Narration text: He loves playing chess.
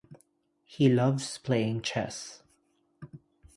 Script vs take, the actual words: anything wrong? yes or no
no